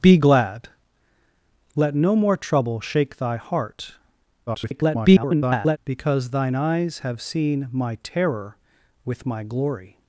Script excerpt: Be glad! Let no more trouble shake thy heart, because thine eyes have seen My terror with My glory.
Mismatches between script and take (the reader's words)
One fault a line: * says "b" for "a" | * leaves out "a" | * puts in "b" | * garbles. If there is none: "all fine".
* garbles